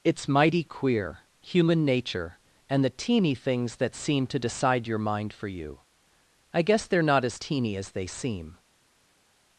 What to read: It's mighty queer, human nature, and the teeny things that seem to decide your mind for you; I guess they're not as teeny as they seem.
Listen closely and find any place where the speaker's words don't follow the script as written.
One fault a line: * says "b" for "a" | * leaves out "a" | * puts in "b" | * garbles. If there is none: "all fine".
all fine